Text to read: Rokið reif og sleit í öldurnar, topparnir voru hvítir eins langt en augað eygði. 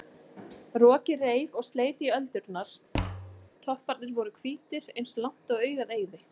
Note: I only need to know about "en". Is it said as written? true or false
false